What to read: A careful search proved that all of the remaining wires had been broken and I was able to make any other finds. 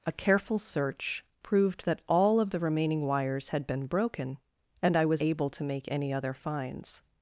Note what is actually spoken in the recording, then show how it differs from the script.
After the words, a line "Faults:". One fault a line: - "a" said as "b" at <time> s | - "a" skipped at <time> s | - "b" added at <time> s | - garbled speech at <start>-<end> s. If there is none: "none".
A careful search proved that all of the remaining wires had been broken and I was able to make any other finds.
Faults:
none